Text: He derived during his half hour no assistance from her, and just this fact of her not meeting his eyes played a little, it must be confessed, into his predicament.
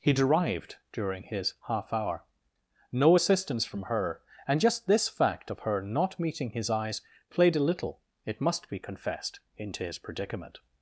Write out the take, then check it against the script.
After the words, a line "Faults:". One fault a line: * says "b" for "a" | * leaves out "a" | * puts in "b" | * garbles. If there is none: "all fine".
He derived during his half hour no assistance from her, and just this fact of her not meeting his eyes played a little, it must be confessed, into his predicament.
Faults:
all fine